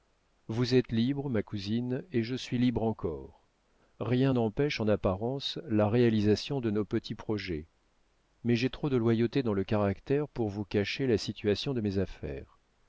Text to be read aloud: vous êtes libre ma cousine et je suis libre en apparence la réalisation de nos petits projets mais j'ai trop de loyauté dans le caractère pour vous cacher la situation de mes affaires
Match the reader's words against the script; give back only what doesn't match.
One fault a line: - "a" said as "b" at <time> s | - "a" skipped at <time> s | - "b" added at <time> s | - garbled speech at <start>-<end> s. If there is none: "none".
- "encore rien n'empêche" added at 2.8 s